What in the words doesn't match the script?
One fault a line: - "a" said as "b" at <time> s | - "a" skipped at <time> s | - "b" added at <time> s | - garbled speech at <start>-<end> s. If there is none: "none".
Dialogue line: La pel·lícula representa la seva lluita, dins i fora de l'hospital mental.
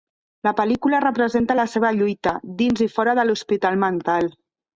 none